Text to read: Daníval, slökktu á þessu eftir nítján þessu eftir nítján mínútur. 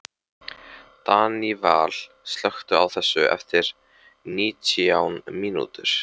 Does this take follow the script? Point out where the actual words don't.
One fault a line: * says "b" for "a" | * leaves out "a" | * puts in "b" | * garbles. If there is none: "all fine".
* leaves out "þessu eftir nítján"